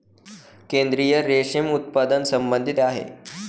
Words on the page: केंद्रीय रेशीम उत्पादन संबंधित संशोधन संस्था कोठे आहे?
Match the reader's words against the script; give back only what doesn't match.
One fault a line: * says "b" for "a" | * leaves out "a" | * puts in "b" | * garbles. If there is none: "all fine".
* leaves out "संशोधन संस्था कोठे"